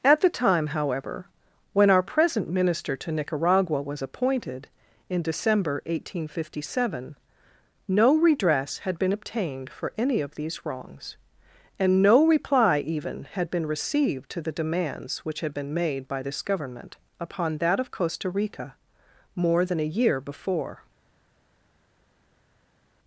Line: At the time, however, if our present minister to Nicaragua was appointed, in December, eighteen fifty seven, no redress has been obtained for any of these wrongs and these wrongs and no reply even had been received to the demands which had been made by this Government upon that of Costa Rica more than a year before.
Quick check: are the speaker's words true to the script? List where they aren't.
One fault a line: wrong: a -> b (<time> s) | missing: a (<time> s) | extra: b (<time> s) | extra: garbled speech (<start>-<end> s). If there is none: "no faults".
wrong: if -> when (1.7 s)
wrong: has -> had (8.8 s)
missing: these wrongs and (12.0 s)